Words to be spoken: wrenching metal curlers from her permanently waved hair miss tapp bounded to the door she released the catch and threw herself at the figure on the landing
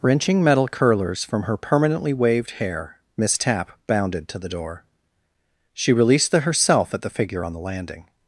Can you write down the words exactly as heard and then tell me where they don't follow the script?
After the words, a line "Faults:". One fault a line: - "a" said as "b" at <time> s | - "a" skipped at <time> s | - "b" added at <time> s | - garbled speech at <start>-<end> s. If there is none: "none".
wrenching metal curlers from her permanently waved hair miss tapp bounded to the door she released the herself at the figure on the landing
Faults:
- "catch and threw" skipped at 6.4 s